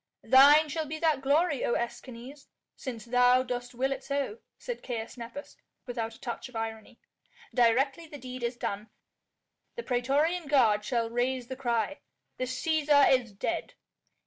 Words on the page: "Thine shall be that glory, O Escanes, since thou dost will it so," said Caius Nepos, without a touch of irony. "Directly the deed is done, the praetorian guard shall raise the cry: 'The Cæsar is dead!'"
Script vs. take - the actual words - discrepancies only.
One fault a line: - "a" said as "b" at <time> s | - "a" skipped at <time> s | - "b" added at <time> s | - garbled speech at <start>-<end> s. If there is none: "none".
none